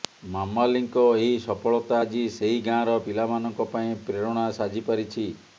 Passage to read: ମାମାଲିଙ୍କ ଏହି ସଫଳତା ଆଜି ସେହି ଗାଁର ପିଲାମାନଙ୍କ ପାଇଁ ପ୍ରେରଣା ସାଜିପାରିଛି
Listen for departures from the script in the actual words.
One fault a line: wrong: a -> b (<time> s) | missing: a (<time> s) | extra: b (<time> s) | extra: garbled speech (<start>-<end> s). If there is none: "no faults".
no faults